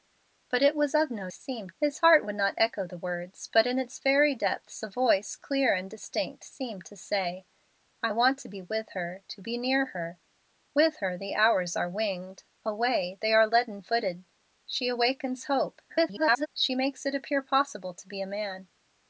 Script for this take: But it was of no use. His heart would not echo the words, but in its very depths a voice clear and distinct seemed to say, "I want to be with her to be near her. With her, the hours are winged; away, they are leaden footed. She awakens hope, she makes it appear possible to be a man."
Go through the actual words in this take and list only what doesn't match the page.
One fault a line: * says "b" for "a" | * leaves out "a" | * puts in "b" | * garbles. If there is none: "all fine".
* says "seemed" for "use"
* garbles